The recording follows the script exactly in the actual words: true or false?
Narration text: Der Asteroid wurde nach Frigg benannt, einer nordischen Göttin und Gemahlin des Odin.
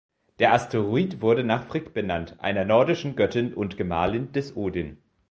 true